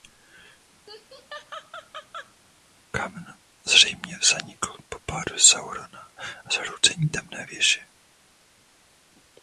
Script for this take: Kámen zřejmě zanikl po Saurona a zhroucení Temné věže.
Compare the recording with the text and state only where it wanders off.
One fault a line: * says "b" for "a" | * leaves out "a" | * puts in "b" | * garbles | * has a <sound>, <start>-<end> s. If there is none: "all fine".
* has a laugh, 0.9-2.3 s
* puts in "pádu"